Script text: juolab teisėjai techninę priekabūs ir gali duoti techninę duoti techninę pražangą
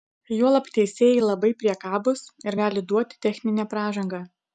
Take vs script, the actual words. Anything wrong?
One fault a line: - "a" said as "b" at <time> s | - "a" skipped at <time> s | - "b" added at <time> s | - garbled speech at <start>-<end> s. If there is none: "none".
- "techninę" said as "labai" at 1.2 s
- "duoti techninę" skipped at 3.7 s